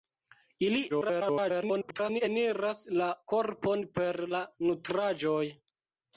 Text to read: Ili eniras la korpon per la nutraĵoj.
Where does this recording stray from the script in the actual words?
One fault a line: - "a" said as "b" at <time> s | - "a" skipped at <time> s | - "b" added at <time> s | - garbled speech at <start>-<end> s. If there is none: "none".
- garbled speech at 0.9-2.2 s